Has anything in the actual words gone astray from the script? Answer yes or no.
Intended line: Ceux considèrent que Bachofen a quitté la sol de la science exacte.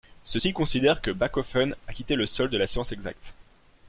yes